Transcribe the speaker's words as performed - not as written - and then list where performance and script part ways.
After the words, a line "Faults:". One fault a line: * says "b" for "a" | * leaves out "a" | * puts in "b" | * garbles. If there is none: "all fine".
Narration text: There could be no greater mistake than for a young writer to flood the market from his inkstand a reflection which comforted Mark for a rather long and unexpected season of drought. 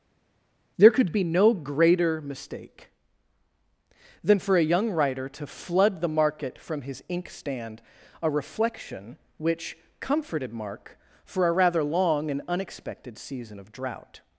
There could be no greater mistake than for a young writer to flood the market from his inkstand a reflection which comforted Mark for a rather long and unexpected season of drought.
Faults:
all fine